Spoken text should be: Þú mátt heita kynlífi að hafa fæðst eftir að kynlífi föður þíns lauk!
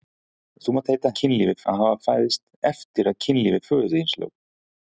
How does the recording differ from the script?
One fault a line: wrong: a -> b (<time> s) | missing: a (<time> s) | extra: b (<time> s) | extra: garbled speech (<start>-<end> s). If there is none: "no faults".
no faults